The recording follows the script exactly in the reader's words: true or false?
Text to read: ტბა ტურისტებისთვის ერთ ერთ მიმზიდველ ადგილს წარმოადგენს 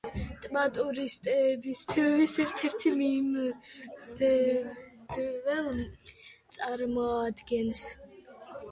false